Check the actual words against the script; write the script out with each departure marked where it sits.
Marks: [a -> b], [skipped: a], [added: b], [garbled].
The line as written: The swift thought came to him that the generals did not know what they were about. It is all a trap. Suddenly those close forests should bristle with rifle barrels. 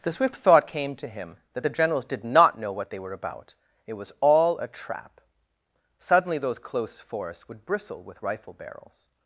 The swift thought came to him that the generals did not know what they were about. It [is -> was] all a trap. Suddenly those close forests [should -> would] bristle with rifle barrels.